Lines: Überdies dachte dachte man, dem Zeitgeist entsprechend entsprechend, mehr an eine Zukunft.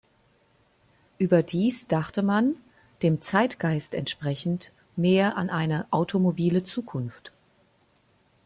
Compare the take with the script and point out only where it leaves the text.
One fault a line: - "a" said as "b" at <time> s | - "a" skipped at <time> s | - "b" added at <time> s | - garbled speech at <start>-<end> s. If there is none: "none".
- "dachte" skipped at 2.2 s
- "entsprechend" skipped at 4.7 s
- "automobile" added at 5.9 s